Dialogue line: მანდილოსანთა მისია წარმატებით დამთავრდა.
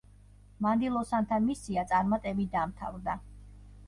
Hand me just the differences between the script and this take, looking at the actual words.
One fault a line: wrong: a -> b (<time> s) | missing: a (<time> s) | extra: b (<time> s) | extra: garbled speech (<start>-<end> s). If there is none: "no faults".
no faults